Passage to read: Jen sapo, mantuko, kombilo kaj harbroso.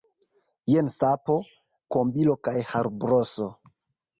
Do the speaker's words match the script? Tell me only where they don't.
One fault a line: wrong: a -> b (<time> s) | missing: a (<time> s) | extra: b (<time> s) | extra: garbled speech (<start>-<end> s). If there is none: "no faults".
missing: mantuko (1.4 s)